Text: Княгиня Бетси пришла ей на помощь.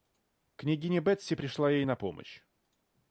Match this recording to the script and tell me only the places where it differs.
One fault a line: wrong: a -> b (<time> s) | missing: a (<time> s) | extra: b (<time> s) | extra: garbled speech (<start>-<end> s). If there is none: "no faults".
no faults